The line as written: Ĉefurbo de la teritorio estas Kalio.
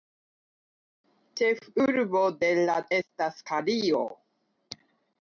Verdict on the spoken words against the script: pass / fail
fail